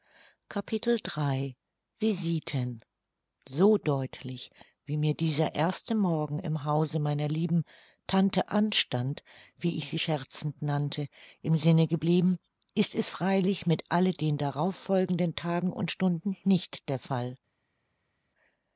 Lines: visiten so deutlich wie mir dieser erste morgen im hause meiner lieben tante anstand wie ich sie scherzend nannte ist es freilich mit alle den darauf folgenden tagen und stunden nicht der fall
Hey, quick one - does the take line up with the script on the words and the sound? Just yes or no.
no